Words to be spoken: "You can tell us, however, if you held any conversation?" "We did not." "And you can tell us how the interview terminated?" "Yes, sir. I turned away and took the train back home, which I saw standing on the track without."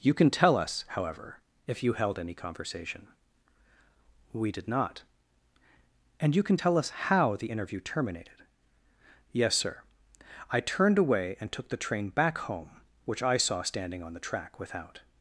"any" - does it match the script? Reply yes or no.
yes